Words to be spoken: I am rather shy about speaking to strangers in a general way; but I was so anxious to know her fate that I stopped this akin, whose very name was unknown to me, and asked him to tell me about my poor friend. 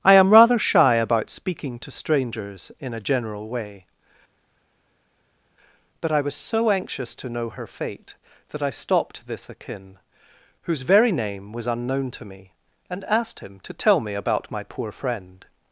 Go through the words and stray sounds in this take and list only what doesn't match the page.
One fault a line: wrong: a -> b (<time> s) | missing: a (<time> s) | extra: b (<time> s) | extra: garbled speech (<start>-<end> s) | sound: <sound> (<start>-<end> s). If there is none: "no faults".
no faults